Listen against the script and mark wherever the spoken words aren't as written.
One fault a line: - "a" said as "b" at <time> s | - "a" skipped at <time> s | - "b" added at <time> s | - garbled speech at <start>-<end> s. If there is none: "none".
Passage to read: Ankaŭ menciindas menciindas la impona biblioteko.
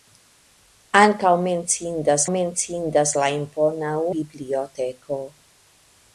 none